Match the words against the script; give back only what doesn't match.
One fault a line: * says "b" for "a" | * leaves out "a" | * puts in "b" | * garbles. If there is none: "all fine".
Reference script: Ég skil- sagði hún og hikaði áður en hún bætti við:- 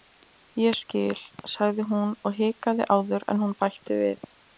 all fine